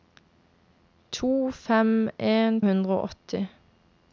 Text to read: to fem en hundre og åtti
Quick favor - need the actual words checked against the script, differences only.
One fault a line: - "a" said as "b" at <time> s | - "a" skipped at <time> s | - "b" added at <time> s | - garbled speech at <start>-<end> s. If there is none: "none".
none